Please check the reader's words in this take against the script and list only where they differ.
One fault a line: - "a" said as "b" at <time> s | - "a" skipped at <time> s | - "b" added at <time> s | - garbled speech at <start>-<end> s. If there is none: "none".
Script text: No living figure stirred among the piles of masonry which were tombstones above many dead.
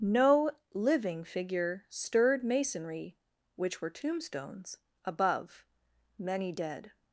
- "among the piles of" skipped at 2.4 s